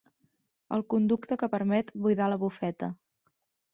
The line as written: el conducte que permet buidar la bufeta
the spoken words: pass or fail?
pass